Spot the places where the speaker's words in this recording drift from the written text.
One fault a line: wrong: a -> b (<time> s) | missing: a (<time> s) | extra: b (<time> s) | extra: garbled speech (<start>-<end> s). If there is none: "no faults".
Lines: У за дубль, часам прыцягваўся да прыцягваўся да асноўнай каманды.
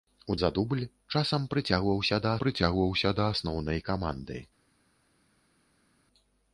no faults